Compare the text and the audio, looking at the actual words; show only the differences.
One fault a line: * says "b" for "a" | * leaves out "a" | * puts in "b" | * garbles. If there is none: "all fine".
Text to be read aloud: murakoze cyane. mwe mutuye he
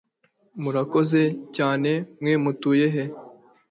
all fine